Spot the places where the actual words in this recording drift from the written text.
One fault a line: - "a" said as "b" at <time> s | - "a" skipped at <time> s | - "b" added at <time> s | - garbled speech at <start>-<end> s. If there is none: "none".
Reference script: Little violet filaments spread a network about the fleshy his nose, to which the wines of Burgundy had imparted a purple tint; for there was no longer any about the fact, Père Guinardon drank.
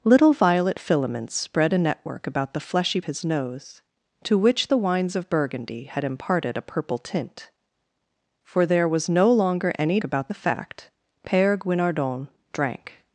none